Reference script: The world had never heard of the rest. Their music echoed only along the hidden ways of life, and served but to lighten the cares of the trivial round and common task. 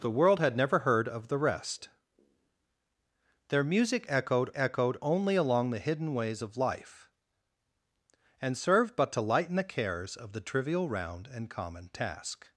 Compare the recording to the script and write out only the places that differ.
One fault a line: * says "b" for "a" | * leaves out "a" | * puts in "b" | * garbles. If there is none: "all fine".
* puts in "echoed"